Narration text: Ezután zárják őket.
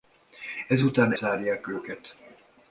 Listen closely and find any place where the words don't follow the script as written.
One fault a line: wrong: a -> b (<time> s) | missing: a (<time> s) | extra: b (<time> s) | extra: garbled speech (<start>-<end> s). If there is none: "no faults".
no faults